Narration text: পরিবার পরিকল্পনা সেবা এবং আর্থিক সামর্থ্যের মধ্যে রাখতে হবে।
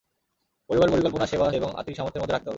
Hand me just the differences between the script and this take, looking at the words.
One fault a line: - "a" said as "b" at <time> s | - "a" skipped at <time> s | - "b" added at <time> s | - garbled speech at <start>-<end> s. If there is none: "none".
none